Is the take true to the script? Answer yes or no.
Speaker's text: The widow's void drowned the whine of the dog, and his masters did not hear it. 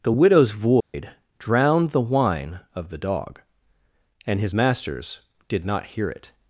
yes